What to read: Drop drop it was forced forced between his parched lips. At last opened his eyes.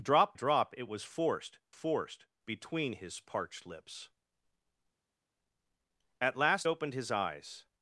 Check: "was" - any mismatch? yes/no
no